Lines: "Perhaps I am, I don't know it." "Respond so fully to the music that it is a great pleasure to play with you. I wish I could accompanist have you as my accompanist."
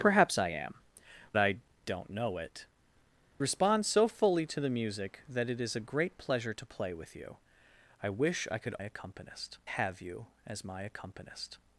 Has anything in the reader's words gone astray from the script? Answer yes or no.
no